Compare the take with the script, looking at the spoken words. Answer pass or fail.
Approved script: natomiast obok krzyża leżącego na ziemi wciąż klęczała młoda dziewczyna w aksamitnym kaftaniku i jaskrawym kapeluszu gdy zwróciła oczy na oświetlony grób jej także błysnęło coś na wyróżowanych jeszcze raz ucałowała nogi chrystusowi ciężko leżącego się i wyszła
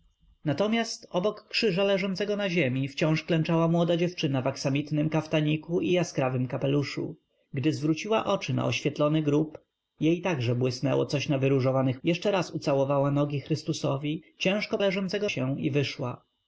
pass